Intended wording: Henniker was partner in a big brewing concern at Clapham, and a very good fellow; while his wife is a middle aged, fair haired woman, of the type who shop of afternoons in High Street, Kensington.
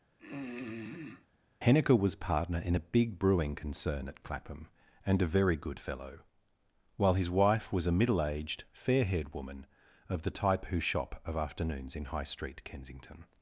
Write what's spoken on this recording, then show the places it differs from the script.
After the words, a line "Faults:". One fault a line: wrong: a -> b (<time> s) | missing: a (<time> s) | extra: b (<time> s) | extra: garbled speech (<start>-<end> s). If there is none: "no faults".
Henniker was partner in a big brewing concern at Clapham, and a very good fellow; while his wife was a middle aged, fair haired woman, of the type who shop of afternoons in High Street, Kensington.
Faults:
wrong: is -> was (7.7 s)